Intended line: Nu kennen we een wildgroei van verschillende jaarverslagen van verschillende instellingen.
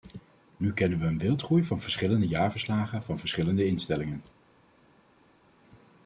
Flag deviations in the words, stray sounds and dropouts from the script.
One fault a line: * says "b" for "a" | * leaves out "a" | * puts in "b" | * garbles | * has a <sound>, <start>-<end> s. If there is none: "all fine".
all fine